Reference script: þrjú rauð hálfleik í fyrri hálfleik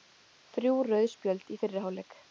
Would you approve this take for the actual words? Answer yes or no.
no